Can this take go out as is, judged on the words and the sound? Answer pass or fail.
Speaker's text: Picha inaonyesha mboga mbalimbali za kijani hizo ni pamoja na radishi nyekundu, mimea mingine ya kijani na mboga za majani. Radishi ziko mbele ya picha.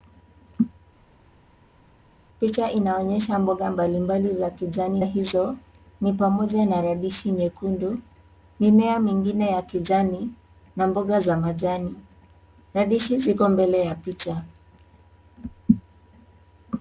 pass